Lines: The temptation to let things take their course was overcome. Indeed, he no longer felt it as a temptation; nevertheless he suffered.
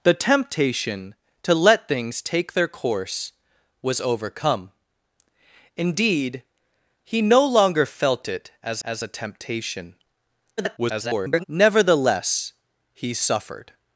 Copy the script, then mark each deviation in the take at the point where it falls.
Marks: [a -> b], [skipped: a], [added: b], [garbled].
The temptation to let things take their course was overcome. Indeed, he no longer felt it as [added: as] a temptation; [garbled] nevertheless he suffered.